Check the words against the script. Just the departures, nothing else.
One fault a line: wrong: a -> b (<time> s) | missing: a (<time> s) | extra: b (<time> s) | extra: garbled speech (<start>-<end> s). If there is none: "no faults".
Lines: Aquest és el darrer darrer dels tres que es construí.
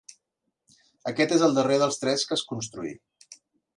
missing: darrer (1.8 s)